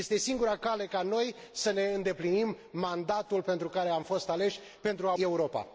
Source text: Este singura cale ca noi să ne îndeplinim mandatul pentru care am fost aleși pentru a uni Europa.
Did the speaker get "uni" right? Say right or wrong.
wrong